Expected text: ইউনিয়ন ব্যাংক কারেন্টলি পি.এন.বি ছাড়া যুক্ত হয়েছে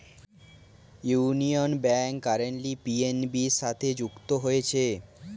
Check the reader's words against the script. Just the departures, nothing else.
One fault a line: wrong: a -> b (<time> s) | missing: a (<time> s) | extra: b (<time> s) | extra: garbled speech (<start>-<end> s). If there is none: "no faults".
wrong: ছাড়া -> সাথে (3.6 s)